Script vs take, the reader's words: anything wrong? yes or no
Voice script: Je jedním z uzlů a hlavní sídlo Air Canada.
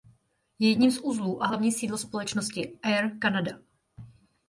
yes